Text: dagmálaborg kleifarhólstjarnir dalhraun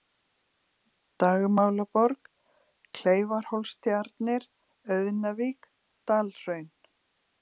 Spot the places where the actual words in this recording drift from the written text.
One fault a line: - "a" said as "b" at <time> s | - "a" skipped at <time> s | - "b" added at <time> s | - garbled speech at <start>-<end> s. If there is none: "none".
- "auðnavík" added at 5.0 s